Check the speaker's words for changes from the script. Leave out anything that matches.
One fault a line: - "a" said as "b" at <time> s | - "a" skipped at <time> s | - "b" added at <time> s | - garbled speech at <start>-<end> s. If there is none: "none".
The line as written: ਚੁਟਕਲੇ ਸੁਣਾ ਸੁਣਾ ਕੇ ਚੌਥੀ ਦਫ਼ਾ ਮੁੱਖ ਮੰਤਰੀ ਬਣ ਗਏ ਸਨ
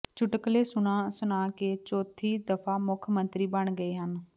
- "ਸਨ" said as "ਹਨ" at 4.0 s